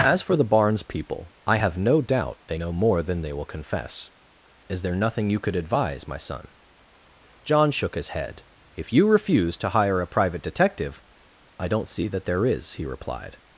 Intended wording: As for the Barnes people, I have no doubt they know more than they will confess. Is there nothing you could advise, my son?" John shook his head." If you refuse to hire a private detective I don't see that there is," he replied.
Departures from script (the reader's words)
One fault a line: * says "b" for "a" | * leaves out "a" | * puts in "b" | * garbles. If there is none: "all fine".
all fine